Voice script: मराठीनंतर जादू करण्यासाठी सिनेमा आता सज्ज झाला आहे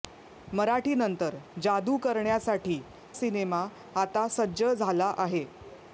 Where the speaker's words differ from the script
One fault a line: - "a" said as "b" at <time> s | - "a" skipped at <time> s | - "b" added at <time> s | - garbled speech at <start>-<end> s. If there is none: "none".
none